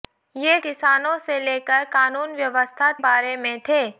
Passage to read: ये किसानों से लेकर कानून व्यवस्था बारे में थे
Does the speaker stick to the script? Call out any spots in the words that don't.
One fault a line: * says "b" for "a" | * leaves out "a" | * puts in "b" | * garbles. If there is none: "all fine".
all fine